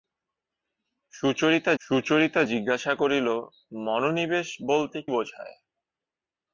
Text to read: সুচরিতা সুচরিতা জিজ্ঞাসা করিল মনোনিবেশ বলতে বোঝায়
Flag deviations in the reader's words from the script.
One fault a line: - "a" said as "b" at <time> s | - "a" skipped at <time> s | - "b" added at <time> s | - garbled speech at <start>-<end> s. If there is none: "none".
none